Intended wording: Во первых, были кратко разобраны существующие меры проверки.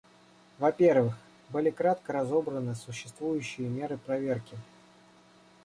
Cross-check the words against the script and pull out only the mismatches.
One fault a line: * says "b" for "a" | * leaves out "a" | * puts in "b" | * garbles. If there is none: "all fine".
all fine